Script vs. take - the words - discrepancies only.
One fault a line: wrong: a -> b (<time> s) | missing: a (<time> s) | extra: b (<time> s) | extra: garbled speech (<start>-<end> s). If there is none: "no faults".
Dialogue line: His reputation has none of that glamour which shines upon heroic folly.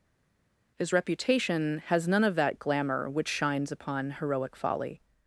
no faults